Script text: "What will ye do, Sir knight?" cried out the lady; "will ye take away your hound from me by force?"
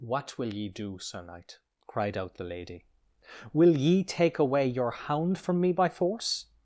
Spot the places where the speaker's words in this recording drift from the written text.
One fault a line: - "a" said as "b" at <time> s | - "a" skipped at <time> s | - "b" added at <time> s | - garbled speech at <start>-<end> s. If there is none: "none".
none